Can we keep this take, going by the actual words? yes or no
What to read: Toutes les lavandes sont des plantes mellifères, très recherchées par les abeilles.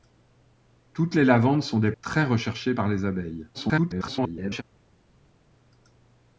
no